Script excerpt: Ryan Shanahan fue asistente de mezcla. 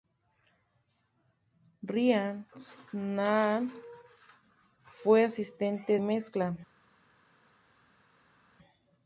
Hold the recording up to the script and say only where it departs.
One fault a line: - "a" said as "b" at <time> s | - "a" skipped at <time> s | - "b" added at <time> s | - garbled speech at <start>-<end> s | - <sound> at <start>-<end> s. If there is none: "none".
- "de" skipped at 6.0 s